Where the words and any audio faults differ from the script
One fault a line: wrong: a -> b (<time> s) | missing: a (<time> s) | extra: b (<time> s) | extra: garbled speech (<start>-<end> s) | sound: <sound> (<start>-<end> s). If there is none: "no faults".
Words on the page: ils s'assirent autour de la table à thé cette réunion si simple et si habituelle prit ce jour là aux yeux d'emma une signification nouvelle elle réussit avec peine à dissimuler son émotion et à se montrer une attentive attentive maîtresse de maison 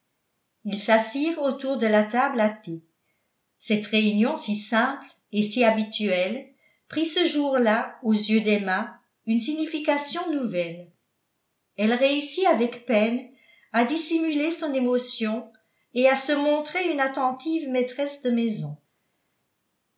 missing: attentive (17.7 s)